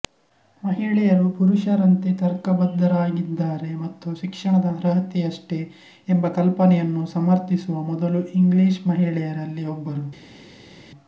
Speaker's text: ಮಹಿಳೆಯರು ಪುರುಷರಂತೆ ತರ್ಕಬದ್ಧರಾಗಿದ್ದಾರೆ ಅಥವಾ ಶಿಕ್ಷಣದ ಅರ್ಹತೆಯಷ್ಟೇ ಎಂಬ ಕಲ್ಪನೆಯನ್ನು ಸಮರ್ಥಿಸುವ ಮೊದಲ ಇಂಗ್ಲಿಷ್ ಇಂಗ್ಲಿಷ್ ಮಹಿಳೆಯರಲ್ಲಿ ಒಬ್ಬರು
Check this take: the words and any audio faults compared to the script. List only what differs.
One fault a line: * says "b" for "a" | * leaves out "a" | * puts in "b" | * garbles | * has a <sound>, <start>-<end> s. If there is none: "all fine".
* says "ಮತ್ತು" for "ಅಥವಾ"
* leaves out "ಇಂಗ್ಲಿಷ್"